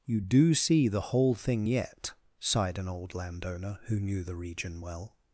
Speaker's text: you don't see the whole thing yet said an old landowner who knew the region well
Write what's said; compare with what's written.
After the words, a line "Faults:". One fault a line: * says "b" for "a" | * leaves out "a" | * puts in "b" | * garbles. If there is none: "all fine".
you do see the whole thing yet sighed an old landowner who knew the region well
Faults:
* says "do" for "don't"
* says "sighed" for "said"